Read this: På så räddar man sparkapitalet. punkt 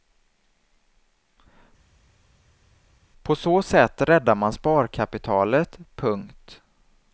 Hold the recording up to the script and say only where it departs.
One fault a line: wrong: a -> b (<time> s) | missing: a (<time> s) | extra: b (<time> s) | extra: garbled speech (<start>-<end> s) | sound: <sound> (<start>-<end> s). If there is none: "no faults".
extra: sätt (3.6 s)